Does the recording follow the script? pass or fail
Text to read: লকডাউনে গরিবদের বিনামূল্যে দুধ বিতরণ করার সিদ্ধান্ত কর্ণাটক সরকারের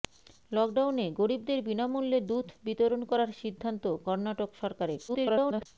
fail